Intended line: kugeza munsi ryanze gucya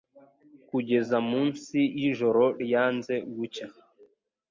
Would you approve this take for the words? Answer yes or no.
no